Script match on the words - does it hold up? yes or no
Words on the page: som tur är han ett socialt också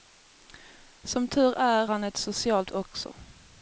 yes